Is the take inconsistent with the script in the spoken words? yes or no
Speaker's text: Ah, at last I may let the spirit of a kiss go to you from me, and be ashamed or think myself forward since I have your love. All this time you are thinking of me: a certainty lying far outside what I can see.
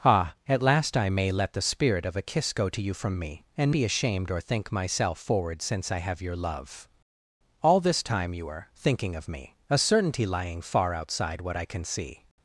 no